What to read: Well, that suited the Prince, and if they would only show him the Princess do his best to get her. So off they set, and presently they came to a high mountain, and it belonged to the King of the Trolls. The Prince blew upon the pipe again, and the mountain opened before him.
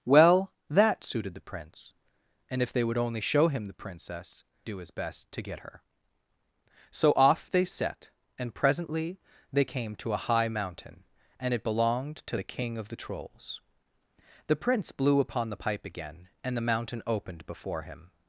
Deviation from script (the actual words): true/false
false